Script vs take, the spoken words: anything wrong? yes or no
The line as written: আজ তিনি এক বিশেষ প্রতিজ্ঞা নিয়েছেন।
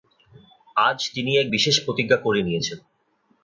yes